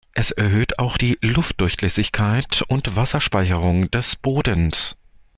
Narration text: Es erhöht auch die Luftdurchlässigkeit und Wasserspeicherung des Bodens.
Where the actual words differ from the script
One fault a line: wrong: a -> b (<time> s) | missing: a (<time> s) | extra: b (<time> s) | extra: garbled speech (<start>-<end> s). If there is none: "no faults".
no faults